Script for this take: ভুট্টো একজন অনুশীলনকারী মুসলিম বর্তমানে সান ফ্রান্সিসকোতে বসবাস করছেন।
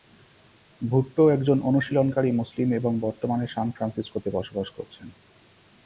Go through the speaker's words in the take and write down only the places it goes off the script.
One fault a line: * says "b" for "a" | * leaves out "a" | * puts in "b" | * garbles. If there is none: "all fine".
* puts in "এবং"